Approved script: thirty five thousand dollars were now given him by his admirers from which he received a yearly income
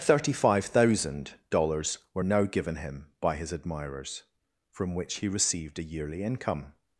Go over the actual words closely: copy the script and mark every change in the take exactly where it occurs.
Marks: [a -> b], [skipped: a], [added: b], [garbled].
thirty five thousand dollars were now given him by his admirers from which he received a yearly income